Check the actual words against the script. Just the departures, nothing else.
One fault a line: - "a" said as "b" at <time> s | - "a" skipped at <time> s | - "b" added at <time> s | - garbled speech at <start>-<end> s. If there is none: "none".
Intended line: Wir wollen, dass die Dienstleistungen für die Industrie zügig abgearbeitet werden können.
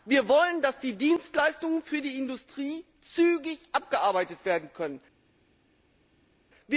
none